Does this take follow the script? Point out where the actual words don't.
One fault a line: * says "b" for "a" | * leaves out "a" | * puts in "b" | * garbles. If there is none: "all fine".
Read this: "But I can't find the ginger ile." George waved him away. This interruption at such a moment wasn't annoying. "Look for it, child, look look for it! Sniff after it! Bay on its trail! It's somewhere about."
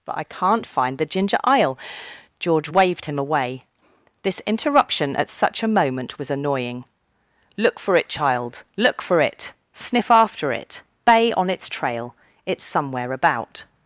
* says "was" for "wasn't"
* leaves out "look"